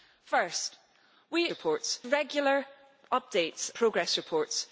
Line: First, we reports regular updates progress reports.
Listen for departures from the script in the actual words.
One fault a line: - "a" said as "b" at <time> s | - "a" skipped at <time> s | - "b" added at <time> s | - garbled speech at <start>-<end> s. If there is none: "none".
none